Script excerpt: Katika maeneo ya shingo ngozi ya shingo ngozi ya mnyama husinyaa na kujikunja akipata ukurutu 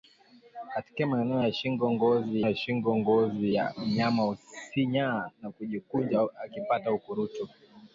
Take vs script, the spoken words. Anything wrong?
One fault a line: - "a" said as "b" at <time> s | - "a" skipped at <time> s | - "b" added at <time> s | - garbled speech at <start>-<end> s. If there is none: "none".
none